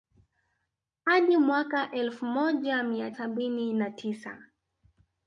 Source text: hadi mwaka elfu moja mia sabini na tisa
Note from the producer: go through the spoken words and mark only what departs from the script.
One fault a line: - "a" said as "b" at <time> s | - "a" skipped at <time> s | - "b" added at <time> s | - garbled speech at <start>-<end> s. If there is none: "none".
none